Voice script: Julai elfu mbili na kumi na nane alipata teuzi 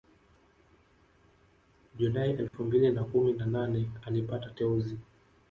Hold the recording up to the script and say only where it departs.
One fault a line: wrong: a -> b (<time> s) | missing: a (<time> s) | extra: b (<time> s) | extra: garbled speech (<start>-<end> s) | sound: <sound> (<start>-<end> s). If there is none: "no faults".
sound: dropout (2.5-2.5 s)